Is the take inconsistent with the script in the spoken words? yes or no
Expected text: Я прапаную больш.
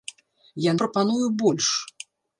no